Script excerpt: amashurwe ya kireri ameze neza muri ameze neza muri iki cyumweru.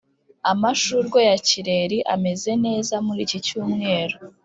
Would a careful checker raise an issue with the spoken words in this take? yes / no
yes